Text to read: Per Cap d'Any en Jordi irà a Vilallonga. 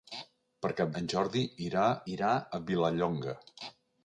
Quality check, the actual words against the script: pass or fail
fail